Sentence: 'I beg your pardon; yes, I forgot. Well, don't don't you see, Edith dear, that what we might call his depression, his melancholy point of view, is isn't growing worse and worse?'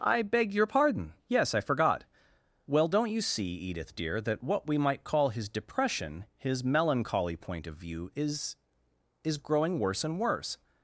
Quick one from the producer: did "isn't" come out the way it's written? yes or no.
no